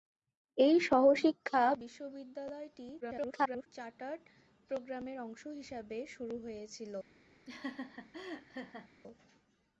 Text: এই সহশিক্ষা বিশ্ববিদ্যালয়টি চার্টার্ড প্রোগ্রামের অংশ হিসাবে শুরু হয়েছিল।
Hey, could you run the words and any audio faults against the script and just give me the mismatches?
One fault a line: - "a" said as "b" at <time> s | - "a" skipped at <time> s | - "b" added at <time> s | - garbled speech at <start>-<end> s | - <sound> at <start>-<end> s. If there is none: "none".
- garbled speech at 3.0-3.7 s
- laugh at 7.5-8.9 s